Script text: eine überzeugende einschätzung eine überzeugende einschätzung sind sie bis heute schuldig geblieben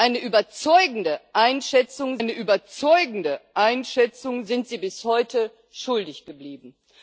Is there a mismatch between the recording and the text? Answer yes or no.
no